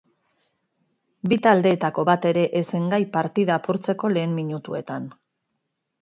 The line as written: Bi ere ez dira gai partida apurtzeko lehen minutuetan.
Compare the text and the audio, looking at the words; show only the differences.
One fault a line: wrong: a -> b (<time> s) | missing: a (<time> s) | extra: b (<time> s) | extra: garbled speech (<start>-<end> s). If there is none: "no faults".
extra: taldeetako bat (1.5 s)
wrong: dira -> zen (2.8 s)